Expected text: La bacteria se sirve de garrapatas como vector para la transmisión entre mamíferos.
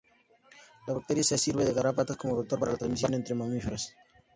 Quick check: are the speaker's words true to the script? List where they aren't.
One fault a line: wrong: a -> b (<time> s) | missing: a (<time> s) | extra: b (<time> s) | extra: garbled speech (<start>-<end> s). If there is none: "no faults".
no faults